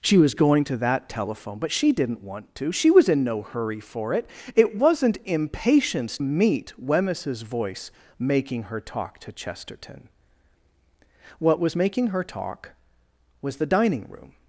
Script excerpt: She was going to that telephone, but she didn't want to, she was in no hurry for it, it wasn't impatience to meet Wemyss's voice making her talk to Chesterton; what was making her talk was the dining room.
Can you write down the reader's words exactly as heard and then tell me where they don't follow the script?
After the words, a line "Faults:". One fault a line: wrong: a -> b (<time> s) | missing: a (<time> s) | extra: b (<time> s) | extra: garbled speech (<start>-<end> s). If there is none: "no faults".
She was going to that telephone, but she didn't want to, she was in no hurry for it, it wasn't impatience meet Wemyss's voice making her talk to Chesterton; what was making her talk was the dining room.
Faults:
missing: to (6.2 s)